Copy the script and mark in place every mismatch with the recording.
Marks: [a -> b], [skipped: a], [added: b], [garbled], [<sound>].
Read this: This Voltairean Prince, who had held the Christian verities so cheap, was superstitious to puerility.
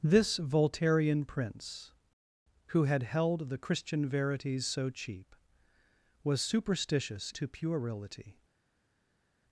This Voltairean Prince, who had held the Christian verities so cheap, was superstitious to puerility.